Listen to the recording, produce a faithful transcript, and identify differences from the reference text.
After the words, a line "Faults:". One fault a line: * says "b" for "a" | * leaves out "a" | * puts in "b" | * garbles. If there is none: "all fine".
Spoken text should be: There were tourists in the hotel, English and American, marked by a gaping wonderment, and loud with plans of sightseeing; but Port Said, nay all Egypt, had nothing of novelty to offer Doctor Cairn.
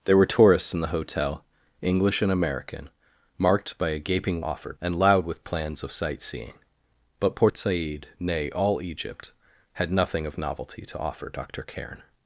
There were tourists in the hotel, English and American, marked by a gaping offer, and loud with plans of sightseeing; but Port Said, nay all Egypt, had nothing of novelty to offer Doctor Cairn.
Faults:
* says "offer" for "wonderment"